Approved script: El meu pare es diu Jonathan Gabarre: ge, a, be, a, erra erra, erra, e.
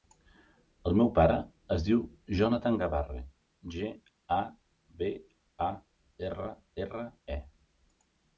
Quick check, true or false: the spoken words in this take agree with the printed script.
false